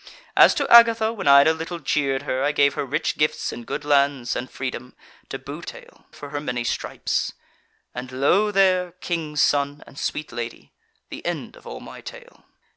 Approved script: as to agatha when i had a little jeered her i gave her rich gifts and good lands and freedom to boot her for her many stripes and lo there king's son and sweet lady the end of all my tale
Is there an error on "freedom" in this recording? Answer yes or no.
no